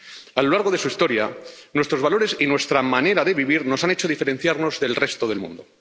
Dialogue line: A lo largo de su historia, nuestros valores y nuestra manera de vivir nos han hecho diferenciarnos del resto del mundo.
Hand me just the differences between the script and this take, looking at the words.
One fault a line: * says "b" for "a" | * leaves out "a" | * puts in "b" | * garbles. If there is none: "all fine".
all fine